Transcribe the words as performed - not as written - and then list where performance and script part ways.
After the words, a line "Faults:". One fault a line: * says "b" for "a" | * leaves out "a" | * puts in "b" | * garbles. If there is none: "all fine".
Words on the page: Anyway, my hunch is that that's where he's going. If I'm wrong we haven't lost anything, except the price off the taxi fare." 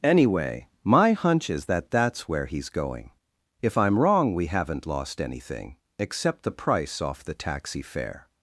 Anyway, my hunch is that that's where he's going. If I'm wrong we haven't lost anything, except the price off the taxi fare."
Faults:
all fine